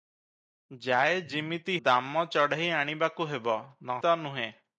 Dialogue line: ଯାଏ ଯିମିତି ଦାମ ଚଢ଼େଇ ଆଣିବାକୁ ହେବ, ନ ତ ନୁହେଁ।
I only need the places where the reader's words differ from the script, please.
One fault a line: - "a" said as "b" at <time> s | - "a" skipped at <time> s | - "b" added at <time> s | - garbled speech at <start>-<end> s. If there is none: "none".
none